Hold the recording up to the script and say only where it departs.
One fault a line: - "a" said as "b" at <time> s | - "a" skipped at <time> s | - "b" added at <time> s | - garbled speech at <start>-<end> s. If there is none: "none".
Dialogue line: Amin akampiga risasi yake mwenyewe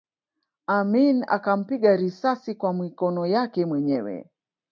- "kwa mikono" added at 2.5 s